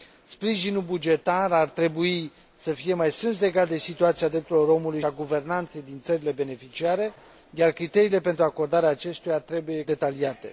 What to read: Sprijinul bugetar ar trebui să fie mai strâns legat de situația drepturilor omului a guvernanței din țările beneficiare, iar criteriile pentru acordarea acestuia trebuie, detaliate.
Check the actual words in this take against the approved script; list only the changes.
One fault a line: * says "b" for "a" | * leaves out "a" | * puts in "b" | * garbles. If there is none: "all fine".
all fine